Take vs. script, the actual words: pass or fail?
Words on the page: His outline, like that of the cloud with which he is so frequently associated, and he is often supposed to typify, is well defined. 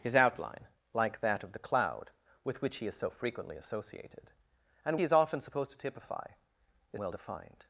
pass